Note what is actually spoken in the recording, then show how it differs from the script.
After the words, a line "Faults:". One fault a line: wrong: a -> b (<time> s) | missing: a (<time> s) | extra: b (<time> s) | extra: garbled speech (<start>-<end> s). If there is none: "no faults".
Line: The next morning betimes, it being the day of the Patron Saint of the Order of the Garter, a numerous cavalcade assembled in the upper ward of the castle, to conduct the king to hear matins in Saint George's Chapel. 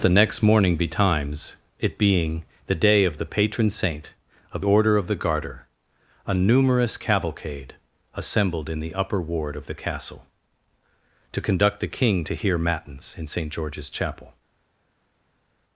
The next morning betimes, it being the day of the Patron Saint of Order of the Garter, a numerous cavalcade assembled in the upper ward of the castle, to conduct the king to hear matins in Saint George's Chapel.
Faults:
missing: the (4.6 s)